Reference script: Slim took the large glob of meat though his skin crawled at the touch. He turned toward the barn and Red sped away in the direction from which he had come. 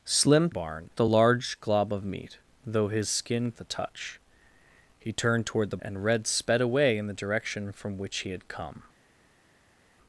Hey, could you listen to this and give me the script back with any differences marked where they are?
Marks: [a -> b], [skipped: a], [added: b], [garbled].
Slim [took -> barn] the large glob of meat though his skin [skipped: crawled at] the touch. He turned toward the [skipped: barn] and Red sped away in the direction from which he had come.